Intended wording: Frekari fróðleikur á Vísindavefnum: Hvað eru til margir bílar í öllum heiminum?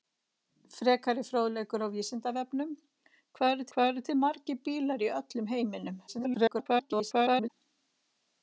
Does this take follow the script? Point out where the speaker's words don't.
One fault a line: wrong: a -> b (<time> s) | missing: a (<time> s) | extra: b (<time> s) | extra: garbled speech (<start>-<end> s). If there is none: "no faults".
extra: Hvað eru (3.7 s)
extra: garbled speech (6.1-7.5 s)